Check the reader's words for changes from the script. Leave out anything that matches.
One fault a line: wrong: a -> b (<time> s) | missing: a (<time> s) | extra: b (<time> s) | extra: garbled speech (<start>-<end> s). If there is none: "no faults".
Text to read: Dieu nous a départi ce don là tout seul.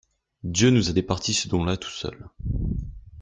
no faults